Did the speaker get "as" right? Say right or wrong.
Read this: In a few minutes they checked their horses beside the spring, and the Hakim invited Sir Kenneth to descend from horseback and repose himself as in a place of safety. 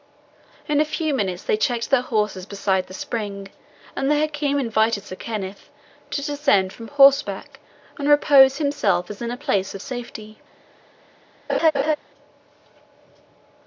right